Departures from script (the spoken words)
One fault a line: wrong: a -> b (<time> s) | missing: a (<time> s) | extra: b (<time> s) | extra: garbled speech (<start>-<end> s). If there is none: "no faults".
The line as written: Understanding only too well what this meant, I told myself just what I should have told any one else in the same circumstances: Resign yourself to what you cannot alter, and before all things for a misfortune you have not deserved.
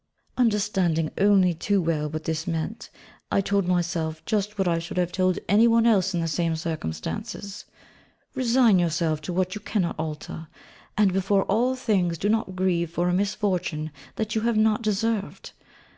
extra: do not grieve (12.2 s)
extra: that (14.2 s)